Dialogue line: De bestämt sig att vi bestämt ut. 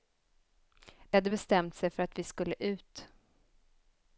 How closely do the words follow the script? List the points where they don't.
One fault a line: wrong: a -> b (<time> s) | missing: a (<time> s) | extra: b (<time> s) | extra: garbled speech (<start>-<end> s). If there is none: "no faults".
extra: hade (1.1 s)
extra: för (1.9 s)
wrong: bestämt -> skulle (2.2 s)